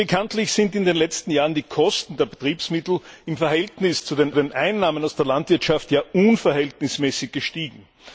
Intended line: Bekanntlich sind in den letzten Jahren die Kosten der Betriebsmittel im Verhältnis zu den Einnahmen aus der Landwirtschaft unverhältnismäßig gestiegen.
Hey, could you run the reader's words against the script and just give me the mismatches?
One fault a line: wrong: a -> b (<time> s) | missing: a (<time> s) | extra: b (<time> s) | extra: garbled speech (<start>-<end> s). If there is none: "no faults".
extra: den (4.3 s)